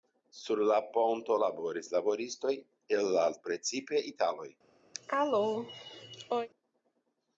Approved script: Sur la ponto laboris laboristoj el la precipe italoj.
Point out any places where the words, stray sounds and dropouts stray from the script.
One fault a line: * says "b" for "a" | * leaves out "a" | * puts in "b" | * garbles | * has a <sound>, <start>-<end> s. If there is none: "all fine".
* has a cough, 4.9-6.5 s